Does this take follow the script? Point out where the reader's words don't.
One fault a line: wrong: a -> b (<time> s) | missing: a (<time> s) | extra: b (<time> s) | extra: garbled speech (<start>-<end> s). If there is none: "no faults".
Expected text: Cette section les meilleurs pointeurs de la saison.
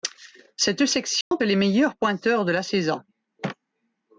no faults